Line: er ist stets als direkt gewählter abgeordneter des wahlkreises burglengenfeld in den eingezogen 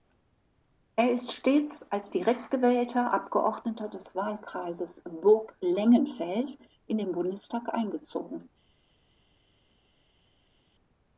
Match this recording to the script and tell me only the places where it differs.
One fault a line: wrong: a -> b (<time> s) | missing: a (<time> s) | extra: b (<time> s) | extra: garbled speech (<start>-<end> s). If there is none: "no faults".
extra: bundestag (7.1 s)